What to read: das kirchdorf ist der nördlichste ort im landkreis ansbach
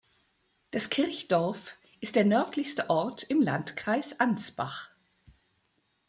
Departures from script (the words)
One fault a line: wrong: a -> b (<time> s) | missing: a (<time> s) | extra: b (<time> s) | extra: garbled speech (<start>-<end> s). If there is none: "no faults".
no faults